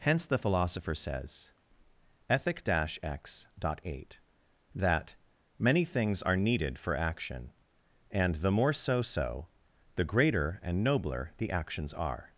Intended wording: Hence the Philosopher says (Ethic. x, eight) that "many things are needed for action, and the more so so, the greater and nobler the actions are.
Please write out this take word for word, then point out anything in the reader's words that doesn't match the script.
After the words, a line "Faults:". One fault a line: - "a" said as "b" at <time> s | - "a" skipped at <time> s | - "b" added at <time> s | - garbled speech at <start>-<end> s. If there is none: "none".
Hence the Philosopher says (Ethic. x, eight) that "many things are needed for action, and the more so so, the greater and nobler the actions are.
Faults:
none